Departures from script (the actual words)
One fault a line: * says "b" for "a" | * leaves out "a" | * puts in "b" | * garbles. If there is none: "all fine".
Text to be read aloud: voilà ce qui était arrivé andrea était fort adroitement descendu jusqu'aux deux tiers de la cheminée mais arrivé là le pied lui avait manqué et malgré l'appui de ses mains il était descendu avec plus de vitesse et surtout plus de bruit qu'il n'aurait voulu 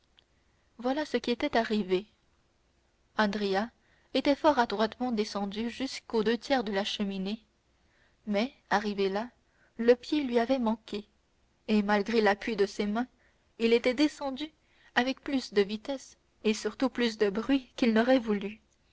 all fine